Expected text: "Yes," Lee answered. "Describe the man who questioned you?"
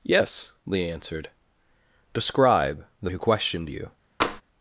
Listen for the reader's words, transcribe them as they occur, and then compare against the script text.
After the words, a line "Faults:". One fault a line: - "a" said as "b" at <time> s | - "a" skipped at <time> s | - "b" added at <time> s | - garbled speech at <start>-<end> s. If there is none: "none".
"Yes," Lee answered. "Describe the who questioned you?"
Faults:
- "man" skipped at 3.1 s